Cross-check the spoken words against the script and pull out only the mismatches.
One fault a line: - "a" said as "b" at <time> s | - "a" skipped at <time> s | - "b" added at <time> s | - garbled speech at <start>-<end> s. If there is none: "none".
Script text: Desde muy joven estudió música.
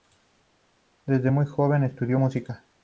none